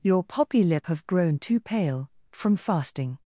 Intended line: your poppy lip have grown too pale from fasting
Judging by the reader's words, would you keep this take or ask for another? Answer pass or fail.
pass